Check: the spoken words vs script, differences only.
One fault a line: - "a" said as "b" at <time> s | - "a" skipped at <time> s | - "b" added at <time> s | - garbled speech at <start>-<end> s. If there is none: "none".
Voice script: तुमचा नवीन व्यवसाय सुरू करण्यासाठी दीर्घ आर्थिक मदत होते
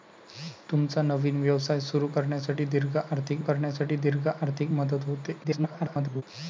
- "करण्यासाठी दीर्घ आर्थिक" added at 3.4 s
- garbled speech at 5.4-6.2 s